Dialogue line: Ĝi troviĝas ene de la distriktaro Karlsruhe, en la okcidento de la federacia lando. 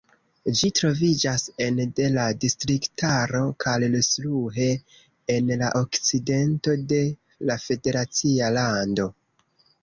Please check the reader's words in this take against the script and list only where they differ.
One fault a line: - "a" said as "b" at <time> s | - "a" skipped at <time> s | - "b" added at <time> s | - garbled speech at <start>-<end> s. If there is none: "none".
none